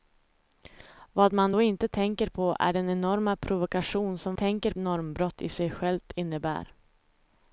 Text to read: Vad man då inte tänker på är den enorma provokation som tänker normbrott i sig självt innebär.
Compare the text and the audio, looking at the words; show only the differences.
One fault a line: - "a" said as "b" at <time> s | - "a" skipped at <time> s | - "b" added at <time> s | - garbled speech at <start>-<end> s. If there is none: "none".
none